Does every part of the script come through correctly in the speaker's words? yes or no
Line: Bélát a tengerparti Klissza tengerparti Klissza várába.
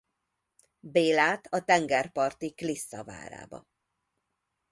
no